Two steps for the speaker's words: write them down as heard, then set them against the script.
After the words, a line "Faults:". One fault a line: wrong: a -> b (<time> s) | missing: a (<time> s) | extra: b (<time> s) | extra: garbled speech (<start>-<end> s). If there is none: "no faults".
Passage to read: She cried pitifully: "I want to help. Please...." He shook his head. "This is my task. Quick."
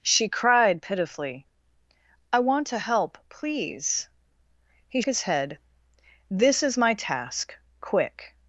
She cried pitifully: "I want to help. Please...." He his head. "This is my task. Quick."
Faults:
missing: shook (5.0 s)